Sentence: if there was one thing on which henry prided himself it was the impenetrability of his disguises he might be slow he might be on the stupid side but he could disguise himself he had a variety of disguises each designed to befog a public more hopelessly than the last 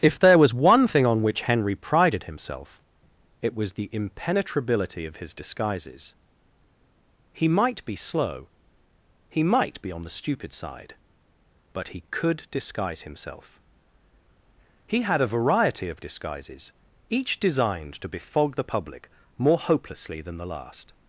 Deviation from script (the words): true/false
true